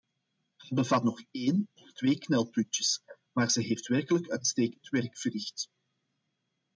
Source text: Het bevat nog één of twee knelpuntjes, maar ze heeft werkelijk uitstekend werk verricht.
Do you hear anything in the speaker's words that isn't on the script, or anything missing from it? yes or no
no